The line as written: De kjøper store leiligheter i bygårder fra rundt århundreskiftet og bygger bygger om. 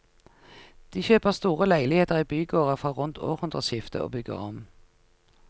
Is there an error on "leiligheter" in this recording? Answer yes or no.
no